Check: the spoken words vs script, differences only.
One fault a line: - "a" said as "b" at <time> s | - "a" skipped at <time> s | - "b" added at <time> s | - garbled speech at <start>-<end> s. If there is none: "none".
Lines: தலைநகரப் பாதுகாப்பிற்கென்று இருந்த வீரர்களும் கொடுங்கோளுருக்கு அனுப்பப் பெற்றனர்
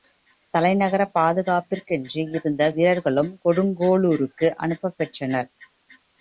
none